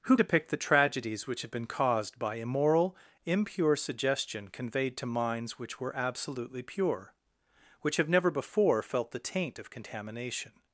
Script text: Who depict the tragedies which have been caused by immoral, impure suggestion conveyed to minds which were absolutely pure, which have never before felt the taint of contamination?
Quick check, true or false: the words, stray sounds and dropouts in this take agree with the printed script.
true